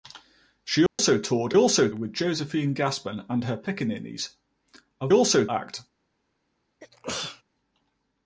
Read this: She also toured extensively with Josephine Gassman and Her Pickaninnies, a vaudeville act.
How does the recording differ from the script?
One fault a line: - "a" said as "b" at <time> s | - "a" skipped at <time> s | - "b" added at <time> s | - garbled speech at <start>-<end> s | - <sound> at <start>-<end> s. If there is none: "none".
- dropout at 0.9-1.0 s
- "extensively" said as "also" at 1.5 s
- "vaudeville" said as "also" at 5.1 s
- sneeze at 6.8-7.4 s